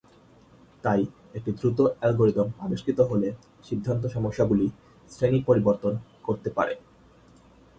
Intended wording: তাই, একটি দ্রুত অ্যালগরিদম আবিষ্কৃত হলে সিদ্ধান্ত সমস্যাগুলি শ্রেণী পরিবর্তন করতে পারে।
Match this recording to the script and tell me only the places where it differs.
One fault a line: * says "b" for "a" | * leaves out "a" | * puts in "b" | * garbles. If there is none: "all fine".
all fine